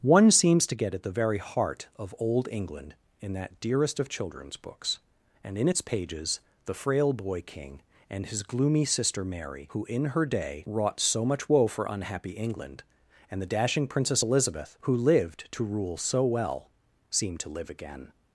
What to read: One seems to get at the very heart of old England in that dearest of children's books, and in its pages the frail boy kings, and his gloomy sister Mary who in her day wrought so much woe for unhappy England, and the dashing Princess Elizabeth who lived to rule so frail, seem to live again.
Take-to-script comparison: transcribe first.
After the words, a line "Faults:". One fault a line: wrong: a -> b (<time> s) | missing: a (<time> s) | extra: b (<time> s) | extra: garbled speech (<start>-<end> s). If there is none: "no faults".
One seems to get at the very heart of old England in that dearest of children's books, and in its pages the frail boy king, and his gloomy sister Mary who in her day wrought so much woe for unhappy England, and the dashing Princess Elizabeth who lived to rule so well, seem to live again.
Faults:
wrong: kings -> king (7.4 s)
wrong: frail -> well (16.3 s)